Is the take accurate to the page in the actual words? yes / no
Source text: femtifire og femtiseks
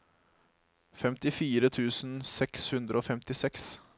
no